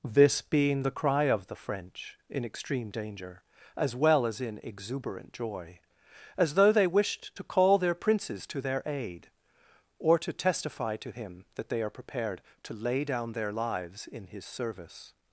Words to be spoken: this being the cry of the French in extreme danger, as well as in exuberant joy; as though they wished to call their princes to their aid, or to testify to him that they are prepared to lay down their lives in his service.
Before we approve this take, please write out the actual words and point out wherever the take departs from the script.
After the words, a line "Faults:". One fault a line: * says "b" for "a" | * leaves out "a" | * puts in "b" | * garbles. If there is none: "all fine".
this being the cry of the French in extreme danger, as well as in exuberant joy; as though they wished to call their princes to their aid, or to testify to him that they are prepared to lay down their lives in his service.
Faults:
all fine